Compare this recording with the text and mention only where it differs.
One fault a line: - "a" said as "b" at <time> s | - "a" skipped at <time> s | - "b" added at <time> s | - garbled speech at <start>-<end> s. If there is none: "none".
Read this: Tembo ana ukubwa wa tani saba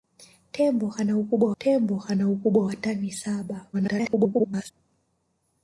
- "tembo ana ukubwa" added at 1.6 s
- garbled speech at 3.7-4.7 s